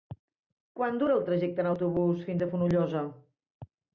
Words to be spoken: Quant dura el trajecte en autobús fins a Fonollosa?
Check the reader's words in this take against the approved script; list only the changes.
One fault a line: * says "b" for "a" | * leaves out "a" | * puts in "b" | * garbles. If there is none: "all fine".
all fine